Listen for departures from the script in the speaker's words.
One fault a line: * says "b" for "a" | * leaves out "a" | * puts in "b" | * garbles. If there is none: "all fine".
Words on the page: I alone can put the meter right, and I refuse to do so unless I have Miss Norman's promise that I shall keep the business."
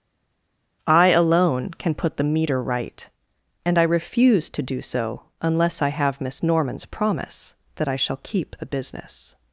all fine